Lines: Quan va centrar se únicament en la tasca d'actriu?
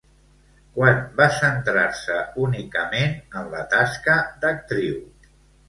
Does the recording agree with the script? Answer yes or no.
yes